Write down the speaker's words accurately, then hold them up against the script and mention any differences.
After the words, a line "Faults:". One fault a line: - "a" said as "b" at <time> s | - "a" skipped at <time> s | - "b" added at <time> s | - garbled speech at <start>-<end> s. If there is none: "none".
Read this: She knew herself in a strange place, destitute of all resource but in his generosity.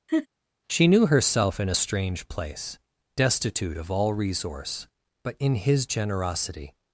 She knew herself in a strange place, destitute of all resource but in his generosity.
Faults:
none